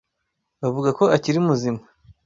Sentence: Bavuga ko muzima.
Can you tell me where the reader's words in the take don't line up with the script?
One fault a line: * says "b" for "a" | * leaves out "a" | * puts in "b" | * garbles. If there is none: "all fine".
* puts in "akiri"